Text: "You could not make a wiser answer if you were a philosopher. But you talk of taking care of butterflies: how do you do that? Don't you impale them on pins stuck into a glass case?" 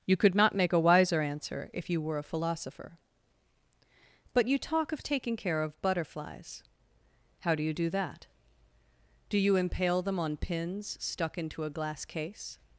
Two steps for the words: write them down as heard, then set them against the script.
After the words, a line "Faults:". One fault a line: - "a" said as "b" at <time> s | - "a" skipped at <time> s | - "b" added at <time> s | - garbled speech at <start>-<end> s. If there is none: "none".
"You could not make a wiser answer if you were a philosopher. But you talk of taking care of butterflies: how do you do that? Do you impale them on pins stuck into a glass case?"
Faults:
- "Don't" said as "Do" at 9.3 s